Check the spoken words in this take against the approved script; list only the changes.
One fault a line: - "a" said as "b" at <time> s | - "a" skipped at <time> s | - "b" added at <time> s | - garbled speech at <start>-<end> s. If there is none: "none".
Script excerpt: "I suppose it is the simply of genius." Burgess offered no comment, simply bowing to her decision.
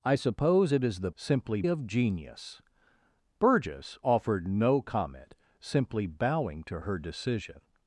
none